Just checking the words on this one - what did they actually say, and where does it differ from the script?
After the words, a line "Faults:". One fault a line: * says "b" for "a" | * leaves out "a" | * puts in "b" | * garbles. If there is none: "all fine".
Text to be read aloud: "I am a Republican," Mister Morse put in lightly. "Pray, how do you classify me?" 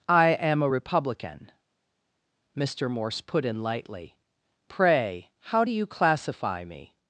"I am a Republican," Mister Morse put in lightly. "Pray, how do you classify me?"
Faults:
all fine